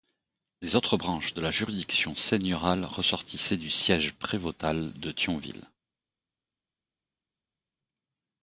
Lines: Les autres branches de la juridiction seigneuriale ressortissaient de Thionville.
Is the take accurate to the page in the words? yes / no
no